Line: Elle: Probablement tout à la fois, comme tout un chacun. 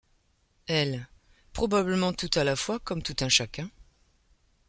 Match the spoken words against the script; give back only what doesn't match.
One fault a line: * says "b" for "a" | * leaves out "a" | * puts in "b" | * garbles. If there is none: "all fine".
all fine